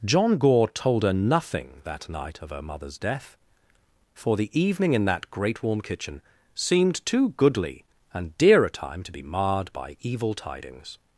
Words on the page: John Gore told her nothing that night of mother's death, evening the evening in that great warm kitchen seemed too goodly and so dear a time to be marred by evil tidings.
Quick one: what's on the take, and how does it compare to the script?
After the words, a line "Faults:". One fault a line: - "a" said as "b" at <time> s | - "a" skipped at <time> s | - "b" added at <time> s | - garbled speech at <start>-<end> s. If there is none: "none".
John Gore told her nothing that night of her mother's death, for the evening in that great warm kitchen seemed too goodly and dear a time to be marred by evil tidings.
Faults:
- "her" added at 2.5 s
- "evening" said as "for" at 4.1 s
- "so" skipped at 8.4 s